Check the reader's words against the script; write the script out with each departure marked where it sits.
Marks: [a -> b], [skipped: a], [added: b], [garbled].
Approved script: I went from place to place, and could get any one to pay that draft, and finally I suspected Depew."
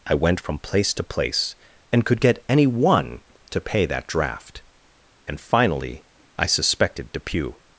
I went from place to place, and could get any one to pay that draft, and finally I suspected Depew."